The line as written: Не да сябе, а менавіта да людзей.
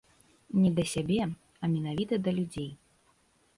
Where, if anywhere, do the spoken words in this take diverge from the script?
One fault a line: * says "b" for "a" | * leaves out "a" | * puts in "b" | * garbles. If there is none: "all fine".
all fine